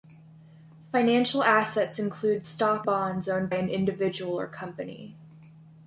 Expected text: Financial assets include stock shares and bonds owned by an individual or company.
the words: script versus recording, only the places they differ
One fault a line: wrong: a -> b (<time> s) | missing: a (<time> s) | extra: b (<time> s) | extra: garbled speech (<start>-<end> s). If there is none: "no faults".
missing: shares and (2.9 s)
missing: by (3.5 s)